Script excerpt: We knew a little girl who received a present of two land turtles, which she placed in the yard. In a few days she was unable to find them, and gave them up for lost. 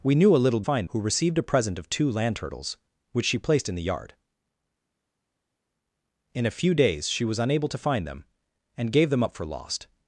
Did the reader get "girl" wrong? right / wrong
wrong